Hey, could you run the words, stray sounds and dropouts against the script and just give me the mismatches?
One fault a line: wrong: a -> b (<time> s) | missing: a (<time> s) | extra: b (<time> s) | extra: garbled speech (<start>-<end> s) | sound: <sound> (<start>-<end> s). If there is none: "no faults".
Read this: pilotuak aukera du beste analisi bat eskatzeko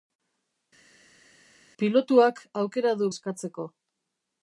missing: beste analisi bat (3.1 s)